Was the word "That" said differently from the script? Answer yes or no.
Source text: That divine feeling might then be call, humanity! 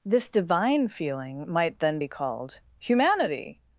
yes